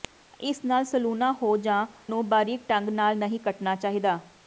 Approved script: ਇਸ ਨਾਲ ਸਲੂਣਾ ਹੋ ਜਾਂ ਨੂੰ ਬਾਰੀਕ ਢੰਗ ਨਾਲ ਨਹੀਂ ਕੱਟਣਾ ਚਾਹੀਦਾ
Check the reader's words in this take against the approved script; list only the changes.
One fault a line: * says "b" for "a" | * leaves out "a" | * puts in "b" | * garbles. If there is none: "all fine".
all fine